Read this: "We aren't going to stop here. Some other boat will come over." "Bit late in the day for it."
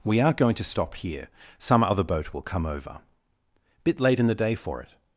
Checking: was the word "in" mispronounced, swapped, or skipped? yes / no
no